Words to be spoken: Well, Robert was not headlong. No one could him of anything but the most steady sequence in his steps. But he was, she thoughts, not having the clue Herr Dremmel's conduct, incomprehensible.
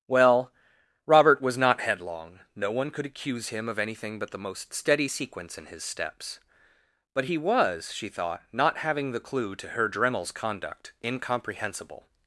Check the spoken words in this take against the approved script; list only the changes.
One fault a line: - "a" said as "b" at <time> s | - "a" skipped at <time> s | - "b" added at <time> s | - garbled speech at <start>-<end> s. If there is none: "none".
- "accuse" added at 3.0 s
- "thoughts" said as "thought" at 8.1 s
- "to" added at 9.6 s